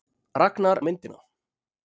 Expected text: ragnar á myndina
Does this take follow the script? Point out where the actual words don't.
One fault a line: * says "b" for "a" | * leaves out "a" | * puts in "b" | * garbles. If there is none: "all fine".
all fine